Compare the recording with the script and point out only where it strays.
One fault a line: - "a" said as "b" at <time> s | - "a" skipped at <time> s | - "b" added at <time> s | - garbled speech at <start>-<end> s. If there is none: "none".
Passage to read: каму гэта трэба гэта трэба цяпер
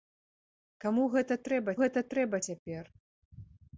none